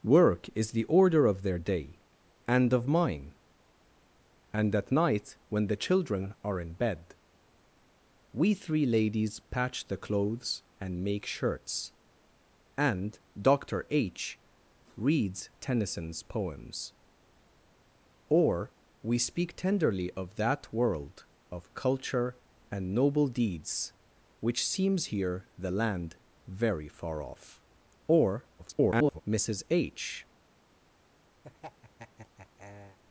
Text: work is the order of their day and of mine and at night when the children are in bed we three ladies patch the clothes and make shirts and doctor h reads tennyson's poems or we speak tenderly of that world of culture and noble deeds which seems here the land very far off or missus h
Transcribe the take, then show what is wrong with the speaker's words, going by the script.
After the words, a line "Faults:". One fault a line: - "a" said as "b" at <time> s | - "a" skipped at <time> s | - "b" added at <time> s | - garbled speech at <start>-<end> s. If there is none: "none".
work is the order of their day and of mine and at night when the children are in bed we three ladies patch the clothes and make shirts and doctor h reads tennyson's poems or we speak tenderly of that world of culture and noble deeds which seems here the land very far off or [garbled] missus h
Faults:
- garbled speech at 28.6-29.2 s